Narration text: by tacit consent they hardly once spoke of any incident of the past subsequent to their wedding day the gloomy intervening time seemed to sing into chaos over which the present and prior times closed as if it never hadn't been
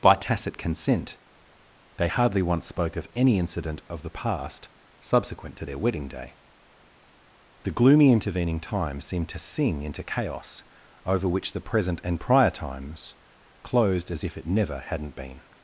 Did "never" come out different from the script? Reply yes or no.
no